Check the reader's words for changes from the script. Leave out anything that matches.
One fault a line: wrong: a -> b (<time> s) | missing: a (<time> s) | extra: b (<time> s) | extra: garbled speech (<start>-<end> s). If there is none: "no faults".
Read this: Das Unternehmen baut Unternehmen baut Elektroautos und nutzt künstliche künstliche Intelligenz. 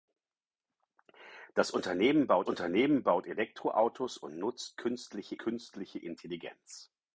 no faults